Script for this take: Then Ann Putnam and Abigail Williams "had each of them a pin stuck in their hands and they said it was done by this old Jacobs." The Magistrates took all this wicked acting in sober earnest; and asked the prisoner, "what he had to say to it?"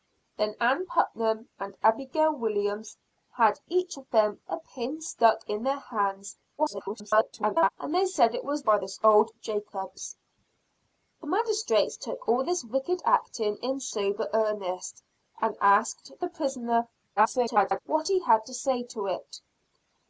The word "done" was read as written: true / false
false